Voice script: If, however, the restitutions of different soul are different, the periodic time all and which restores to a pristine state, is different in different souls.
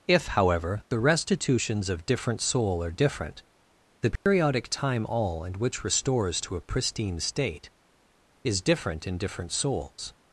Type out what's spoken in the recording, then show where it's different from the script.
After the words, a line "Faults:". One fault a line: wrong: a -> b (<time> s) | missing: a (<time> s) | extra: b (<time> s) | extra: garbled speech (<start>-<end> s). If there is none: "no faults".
If, however, the restitutions of different soul are different, the periodic time all and which restores to a pristine state, is different in different souls.
Faults:
no faults